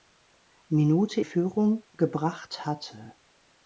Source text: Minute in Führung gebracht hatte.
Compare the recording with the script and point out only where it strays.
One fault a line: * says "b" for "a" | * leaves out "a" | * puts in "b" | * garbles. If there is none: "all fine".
* leaves out "in"